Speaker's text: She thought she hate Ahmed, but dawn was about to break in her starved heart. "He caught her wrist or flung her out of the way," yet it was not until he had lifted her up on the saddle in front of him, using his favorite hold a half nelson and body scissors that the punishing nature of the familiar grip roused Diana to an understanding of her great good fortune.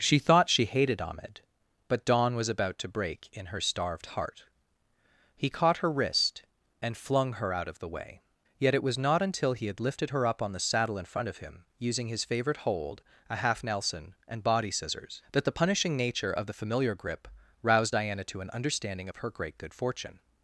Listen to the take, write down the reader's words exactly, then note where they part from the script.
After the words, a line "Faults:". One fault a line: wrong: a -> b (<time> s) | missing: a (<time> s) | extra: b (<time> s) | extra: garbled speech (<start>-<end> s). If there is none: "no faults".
She thought she hated Ahmed, but dawn was about to break in her starved heart. "He caught her wrist and flung her out of the way," yet it was not until he had lifted her up on the saddle in front of him, using his favorite hold a half nelson and body scissors that the punishing nature of the familiar grip roused Diana to an understanding of her great good fortune.
Faults:
wrong: hate -> hated (0.7 s)
wrong: or -> and (6.8 s)